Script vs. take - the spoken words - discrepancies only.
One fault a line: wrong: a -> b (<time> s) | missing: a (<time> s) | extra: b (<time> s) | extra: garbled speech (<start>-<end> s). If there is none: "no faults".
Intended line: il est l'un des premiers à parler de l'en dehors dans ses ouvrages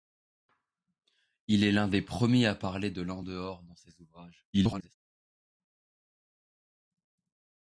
extra: garbled speech (4.5-4.9 s)